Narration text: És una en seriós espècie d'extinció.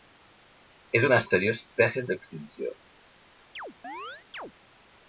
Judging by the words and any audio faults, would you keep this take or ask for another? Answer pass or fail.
fail